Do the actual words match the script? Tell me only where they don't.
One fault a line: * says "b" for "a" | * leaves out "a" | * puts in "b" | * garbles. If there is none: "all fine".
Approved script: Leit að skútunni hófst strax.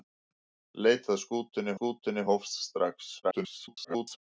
* puts in "skútunni"
* garbles